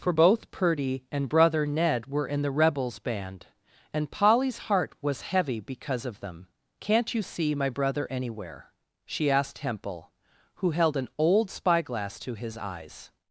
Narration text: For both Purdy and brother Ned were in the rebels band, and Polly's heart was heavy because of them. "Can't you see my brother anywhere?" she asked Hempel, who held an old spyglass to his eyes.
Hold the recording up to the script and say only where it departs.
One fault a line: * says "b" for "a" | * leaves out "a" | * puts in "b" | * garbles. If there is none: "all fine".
all fine